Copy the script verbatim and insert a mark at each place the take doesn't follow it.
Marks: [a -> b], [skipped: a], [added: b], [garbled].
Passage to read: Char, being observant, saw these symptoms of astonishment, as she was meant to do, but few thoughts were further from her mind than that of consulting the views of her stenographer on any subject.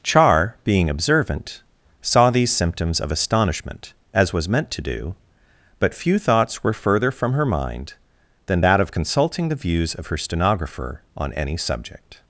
Char, being observant, saw these symptoms of astonishment, as [skipped: she] was meant to do, but few thoughts were further from her mind than that of consulting the views of her stenographer on any subject.